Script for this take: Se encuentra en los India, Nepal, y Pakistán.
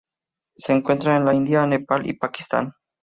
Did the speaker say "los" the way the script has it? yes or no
no